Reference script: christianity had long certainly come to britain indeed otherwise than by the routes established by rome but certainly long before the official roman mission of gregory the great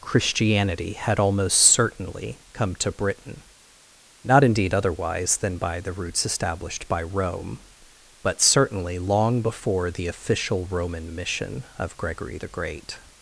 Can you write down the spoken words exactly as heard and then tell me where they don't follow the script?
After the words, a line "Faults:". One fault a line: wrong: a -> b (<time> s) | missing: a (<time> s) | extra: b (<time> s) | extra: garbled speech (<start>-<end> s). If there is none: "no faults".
christianity had almost certainly come to britain not indeed otherwise than by the routes established by rome but certainly long before the official roman mission of gregory the great
Faults:
wrong: long -> almost (1.2 s)
extra: not (4.2 s)